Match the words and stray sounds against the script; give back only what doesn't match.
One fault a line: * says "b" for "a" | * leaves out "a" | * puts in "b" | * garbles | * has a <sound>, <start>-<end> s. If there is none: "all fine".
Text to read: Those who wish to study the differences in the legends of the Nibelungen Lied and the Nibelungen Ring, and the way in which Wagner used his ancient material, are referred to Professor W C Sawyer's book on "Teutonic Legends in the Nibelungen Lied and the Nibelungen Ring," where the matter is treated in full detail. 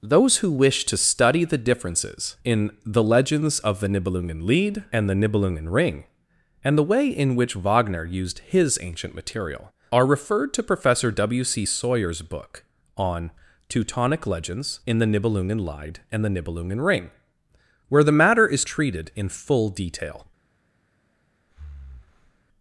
* has a breath, 21.5-22.4 s